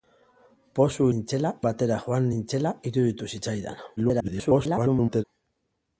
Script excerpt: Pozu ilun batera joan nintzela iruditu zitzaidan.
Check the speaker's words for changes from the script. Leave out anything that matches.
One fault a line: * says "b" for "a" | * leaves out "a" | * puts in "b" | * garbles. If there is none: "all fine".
* says "nintzela" for "ilun"
* garbles